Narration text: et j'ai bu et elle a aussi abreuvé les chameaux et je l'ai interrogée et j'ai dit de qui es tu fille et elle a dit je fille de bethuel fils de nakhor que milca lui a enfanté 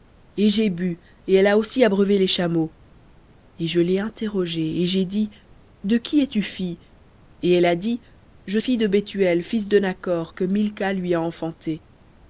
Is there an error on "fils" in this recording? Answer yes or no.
no